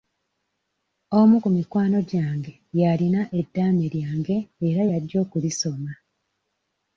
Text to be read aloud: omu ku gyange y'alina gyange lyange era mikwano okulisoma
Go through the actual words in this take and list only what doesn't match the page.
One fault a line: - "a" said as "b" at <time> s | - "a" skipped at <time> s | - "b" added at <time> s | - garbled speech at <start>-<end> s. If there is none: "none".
- "mikwano" added at 1.6 s
- "gyange" said as "eddaame" at 3.4 s
- "mikwano" said as "y'ajja" at 4.9 s